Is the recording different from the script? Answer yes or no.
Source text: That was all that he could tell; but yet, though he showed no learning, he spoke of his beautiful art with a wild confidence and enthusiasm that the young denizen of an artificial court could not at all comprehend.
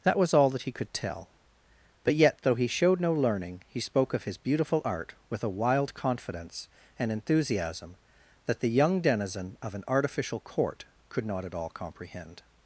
no